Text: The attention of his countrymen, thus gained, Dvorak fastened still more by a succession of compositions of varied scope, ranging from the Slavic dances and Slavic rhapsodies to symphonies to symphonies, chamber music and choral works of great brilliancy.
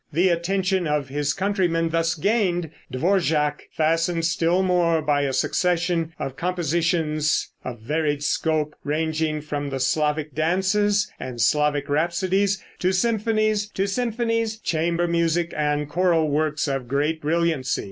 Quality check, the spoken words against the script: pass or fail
pass